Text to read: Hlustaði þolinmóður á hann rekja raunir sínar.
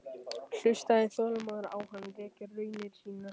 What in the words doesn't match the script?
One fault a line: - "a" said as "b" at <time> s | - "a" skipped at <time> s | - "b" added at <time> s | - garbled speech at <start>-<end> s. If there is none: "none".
none